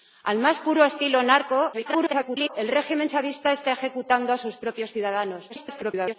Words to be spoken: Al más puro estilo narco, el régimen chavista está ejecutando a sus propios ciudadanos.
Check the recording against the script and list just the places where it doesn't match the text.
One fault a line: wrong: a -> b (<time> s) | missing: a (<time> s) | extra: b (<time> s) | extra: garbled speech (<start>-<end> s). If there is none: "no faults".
extra: garbled speech (1.7-2.5 s)
extra: garbled speech (5.5-6.2 s)